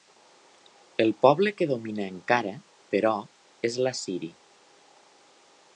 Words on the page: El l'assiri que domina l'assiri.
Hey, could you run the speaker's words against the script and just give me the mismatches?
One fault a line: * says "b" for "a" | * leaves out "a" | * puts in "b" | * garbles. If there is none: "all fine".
* says "poble" for "l'assiri"
* puts in "encara però és"